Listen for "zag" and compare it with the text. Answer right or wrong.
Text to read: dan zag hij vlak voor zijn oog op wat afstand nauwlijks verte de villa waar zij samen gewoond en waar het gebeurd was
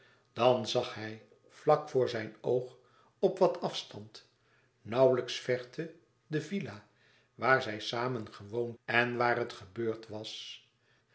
right